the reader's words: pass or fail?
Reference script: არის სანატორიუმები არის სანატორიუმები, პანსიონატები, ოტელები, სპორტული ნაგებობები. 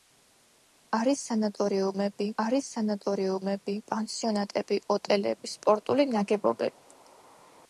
pass